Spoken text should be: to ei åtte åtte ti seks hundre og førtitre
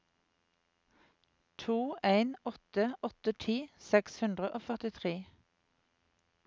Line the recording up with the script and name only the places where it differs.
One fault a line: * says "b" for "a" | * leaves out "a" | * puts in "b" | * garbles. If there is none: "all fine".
* says "en" for "ei"